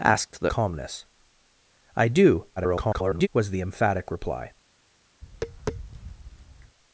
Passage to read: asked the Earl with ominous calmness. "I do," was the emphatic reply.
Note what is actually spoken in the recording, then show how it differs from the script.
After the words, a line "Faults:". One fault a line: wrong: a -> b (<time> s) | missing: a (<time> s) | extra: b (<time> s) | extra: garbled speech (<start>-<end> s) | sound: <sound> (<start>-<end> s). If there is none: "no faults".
asked the Calmness. "I do," [garbled] was the emphatic reply.
Faults:
missing: Earl with ominous (0.5 s)
extra: garbled speech (2.6-3.3 s)
sound: tap (5.2-6.8 s)